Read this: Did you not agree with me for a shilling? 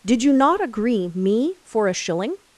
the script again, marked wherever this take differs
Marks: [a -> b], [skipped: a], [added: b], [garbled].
Did you not agree [skipped: with] me for a shilling?